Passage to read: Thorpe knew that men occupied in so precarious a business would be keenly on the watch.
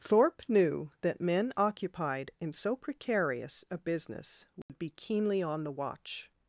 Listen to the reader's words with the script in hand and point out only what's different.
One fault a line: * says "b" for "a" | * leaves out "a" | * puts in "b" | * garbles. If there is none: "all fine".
all fine